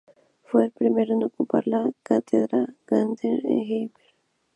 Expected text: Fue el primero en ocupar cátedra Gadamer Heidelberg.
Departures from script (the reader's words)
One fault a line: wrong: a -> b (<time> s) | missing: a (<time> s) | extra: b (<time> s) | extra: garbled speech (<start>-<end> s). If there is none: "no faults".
extra: la (1.7 s)
extra: en (3.2 s)